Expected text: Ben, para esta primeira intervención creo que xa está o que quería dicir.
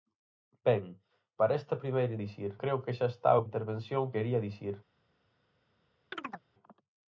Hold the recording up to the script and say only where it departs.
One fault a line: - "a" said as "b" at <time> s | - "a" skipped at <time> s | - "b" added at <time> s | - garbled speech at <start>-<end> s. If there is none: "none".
- "intervención" said as "dicir" at 2.2 s
- "que" said as "intervención" at 3.5 s